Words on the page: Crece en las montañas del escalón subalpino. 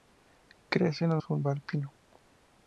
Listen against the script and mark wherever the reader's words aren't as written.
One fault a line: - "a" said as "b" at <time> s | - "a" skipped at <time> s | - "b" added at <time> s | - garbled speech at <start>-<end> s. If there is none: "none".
- "montañas del escalón" skipped at 1.2 s